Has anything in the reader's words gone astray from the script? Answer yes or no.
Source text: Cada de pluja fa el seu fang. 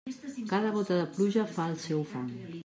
yes